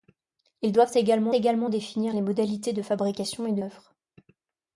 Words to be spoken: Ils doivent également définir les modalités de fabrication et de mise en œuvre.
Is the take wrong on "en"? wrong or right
wrong